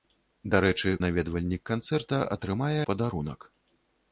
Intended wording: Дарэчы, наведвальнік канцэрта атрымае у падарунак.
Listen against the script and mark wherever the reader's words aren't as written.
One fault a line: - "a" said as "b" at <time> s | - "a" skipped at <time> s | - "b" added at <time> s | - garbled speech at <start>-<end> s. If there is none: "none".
none